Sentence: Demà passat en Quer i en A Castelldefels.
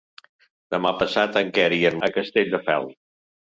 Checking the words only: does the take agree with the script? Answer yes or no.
yes